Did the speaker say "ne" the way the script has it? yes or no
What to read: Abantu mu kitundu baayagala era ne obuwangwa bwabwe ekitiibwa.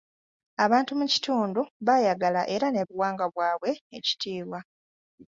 yes